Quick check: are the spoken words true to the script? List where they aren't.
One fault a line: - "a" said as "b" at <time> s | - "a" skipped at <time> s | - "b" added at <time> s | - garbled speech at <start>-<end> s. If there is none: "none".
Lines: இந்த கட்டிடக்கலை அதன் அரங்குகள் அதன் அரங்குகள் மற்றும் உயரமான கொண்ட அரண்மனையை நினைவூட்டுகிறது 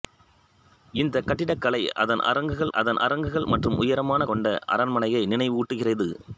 none